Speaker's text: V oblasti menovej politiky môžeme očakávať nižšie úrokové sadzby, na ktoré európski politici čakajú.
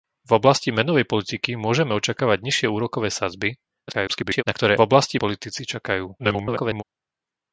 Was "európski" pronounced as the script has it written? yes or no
no